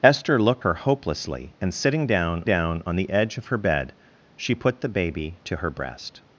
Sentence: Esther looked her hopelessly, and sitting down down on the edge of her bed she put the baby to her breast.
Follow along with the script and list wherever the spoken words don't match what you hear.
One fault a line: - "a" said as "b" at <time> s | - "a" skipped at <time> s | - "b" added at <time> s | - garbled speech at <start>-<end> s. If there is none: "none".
none